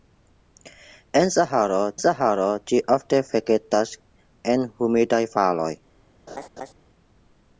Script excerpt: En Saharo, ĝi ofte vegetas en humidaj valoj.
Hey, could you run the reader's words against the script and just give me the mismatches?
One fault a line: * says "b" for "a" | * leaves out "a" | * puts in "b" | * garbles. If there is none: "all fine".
* puts in "Saharo"